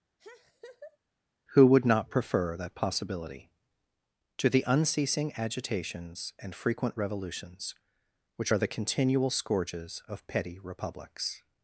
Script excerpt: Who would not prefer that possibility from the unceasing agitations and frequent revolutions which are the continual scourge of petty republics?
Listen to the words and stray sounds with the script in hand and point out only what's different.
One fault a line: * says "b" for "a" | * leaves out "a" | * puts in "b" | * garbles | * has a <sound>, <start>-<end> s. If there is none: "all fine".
* has a laugh, 0.2-1.0 s
* says "to" for "from"
* says "scourges" for "scourge"